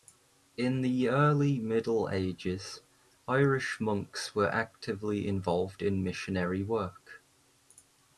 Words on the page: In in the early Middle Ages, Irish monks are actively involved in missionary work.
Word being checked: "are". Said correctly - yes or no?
no